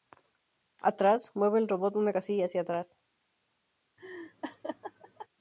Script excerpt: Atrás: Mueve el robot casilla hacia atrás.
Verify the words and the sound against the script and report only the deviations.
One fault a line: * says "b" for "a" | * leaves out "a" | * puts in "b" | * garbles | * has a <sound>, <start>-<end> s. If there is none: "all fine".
* puts in "una"
* has a laugh, 4.0-5.3 s